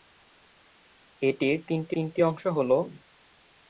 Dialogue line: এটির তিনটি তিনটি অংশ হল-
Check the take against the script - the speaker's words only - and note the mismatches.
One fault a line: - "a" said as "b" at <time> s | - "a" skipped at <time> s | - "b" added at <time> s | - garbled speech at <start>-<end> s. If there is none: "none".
none